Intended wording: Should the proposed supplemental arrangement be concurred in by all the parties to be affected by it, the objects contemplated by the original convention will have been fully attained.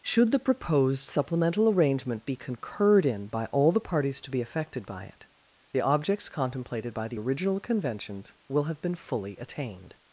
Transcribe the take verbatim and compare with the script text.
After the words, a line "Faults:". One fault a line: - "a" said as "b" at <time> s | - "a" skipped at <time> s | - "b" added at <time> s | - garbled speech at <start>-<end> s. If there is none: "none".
Should the proposed supplemental arrangement be concurred in by all the parties to be affected by it, the objects contemplated by the original conventions will have been fully attained.
Faults:
- "convention" said as "conventions" at 7.6 s